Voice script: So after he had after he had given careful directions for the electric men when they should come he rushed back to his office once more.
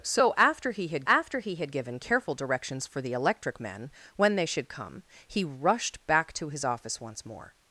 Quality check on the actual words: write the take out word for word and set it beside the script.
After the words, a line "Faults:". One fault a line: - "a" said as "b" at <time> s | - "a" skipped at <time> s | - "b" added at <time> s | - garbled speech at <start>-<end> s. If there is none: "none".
So after he had after he had given careful directions for the electric men when they should come he rushed back to his office once more.
Faults:
none